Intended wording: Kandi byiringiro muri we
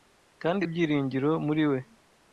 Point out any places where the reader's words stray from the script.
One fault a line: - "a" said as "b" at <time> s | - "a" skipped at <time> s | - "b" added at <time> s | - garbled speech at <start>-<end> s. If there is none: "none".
none